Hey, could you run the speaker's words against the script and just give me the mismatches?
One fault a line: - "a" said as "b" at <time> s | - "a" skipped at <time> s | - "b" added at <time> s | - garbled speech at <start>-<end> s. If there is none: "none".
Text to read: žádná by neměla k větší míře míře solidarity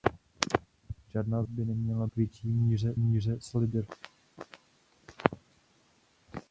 none